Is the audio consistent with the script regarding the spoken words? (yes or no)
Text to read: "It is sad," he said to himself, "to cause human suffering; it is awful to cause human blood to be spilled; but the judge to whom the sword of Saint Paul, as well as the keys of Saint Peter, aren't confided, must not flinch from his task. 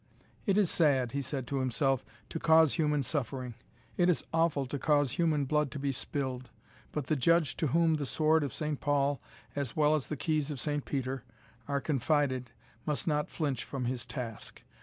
no